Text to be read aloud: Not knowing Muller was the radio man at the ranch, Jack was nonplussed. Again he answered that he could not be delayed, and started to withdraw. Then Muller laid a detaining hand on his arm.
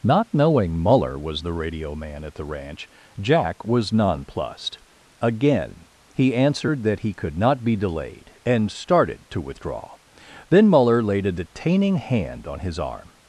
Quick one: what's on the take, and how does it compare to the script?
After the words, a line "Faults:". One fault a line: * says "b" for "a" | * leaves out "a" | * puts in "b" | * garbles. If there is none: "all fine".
Not knowing Muller was the radio man at the ranch, Jack was nonplussed. Again he answered that he could not be delayed, and started to withdraw. Then Muller laid a detaining hand on his arm.
Faults:
all fine